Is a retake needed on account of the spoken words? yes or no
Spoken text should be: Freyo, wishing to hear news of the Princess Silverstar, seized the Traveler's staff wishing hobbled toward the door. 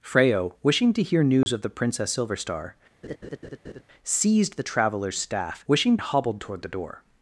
no